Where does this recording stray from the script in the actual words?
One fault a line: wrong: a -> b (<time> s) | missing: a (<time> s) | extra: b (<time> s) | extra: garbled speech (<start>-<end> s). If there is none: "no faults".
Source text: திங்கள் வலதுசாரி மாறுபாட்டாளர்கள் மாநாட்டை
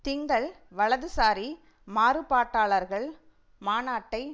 no faults